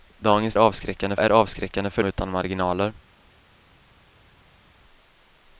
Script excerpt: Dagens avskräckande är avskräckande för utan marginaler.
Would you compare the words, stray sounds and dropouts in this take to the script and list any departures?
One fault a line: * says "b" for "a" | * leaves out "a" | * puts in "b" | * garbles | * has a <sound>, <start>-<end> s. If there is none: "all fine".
all fine